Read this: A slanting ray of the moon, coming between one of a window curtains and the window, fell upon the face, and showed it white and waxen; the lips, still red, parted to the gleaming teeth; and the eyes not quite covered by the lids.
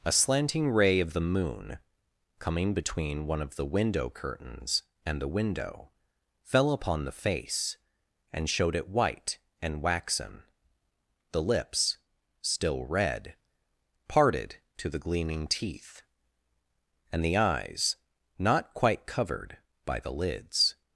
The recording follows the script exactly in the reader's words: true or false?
false